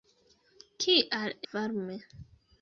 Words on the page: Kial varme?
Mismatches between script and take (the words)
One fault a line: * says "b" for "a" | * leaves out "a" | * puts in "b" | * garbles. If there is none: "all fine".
all fine